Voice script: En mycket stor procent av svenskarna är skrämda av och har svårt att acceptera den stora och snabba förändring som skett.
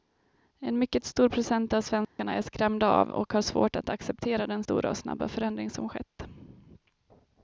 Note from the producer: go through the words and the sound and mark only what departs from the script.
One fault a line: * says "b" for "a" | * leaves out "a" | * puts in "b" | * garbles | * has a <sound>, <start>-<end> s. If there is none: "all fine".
* has a dropout, 2.0-2.2 s